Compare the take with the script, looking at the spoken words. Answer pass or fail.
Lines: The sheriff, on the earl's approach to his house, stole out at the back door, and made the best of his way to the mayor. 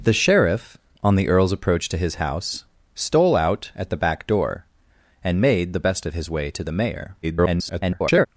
fail